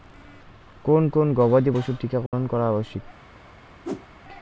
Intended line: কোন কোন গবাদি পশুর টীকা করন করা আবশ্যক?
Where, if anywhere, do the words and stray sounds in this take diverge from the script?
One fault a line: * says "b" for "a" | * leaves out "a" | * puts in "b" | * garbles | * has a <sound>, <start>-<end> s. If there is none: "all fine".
* has a dropout, 2.3-2.3 s
* has a whoosh, 3.8-4.1 s